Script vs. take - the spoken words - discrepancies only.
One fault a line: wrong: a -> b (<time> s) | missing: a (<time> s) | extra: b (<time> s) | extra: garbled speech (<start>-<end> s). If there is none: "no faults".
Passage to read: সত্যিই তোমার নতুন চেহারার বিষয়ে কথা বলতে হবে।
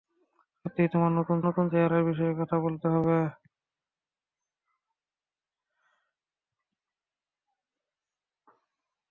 extra: নতুন (1.5 s)